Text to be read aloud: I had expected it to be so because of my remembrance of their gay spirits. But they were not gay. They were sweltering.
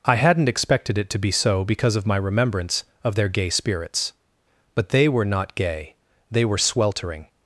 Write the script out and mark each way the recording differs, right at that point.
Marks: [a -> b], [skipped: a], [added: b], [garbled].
I [had -> hadn't] expected it to be so because of my remembrance of their gay spirits. But they were not gay. They were sweltering.